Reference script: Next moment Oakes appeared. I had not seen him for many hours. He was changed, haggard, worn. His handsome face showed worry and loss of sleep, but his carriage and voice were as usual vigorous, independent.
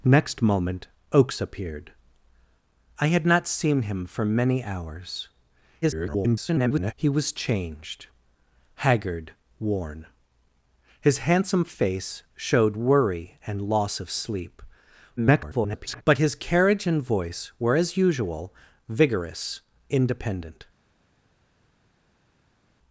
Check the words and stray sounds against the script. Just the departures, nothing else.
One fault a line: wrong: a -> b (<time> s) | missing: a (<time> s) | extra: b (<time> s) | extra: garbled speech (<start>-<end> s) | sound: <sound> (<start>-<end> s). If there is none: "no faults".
extra: garbled speech (5.8-6.9 s)
extra: garbled speech (15.2-16.0 s)